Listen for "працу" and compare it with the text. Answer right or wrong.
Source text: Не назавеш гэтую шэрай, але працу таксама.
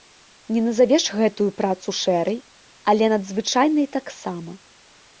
wrong